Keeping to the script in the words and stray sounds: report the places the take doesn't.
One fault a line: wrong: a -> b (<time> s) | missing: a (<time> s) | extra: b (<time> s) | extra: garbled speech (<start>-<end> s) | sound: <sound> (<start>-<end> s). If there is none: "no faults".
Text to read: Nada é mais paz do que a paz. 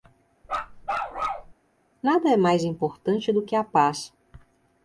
sound: bark (0.4-1.5 s)
wrong: paz -> importante (2.6 s)